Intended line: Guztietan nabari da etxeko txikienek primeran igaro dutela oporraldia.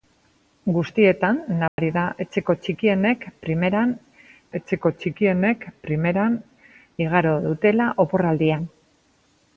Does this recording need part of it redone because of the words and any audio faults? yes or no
yes